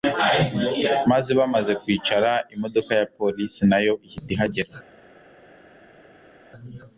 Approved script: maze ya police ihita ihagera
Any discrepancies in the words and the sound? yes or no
yes